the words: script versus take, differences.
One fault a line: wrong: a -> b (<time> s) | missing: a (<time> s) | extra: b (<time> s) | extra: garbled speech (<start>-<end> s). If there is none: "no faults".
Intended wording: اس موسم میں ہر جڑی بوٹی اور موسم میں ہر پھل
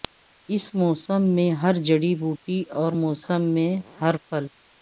no faults